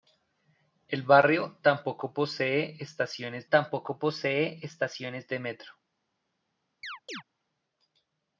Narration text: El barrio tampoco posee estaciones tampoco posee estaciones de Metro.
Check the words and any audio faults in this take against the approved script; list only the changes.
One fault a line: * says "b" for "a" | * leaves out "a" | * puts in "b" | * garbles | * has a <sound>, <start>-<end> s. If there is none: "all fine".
* has a chirp, 6.8-7.2 s